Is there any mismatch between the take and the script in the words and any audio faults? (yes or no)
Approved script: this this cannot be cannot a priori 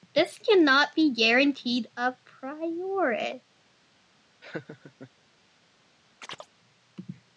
yes